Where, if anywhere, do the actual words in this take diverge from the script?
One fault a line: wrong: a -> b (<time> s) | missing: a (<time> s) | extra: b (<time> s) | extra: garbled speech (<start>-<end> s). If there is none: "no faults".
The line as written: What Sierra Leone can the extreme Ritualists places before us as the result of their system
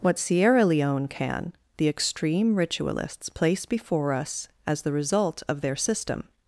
wrong: places -> place (3.3 s)